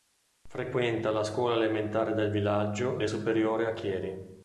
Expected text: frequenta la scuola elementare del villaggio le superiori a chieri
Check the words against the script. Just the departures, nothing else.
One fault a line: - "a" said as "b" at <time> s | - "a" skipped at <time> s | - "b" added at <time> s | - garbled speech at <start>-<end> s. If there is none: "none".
none